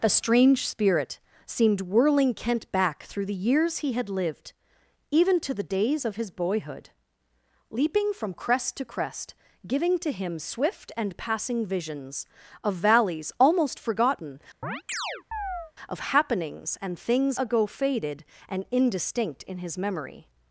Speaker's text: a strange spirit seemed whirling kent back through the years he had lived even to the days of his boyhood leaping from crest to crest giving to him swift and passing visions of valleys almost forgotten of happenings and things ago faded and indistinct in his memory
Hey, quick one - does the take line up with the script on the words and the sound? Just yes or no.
no